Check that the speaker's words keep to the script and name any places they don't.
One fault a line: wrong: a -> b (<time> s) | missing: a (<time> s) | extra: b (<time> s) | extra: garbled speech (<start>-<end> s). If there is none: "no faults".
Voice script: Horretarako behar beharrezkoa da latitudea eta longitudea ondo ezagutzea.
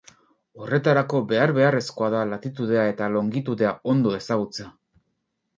no faults